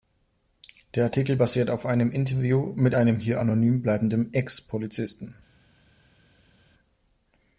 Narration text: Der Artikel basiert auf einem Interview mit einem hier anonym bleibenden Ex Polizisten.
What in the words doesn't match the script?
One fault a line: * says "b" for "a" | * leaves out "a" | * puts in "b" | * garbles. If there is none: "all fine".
all fine